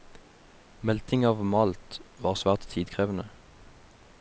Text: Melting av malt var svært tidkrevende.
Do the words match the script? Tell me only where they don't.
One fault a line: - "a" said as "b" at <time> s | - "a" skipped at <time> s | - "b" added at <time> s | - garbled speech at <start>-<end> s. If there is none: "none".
none